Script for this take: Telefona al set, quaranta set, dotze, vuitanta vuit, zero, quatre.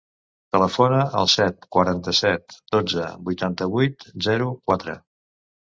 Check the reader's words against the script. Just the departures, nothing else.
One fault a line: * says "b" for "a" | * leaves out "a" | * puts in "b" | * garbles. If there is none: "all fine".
all fine